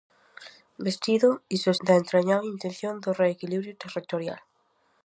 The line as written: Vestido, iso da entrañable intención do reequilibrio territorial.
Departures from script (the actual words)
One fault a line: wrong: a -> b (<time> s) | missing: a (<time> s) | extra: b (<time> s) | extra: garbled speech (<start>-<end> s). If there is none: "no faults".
no faults